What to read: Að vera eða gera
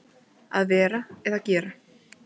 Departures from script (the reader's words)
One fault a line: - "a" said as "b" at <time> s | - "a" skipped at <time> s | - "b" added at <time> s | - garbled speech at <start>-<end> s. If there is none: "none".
none